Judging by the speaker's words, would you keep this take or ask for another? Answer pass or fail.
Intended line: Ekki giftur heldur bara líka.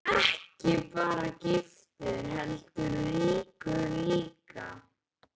fail